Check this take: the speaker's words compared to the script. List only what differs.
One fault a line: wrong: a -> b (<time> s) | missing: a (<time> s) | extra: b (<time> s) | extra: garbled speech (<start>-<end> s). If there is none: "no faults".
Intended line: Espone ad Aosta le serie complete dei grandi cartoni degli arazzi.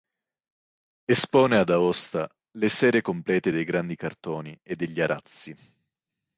extra: e (4.6 s)